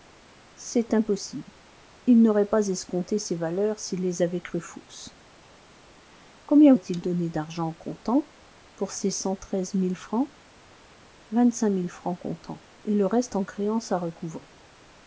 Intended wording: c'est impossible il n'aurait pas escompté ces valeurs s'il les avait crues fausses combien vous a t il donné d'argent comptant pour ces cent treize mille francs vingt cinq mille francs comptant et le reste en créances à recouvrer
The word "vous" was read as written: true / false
false